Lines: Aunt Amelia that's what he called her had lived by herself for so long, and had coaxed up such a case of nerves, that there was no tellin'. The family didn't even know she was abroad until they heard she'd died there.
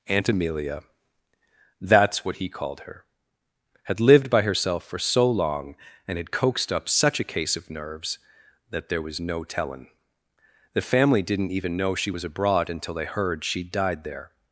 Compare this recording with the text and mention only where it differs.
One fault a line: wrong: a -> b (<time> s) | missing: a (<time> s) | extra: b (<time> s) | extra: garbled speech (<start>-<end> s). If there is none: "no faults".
no faults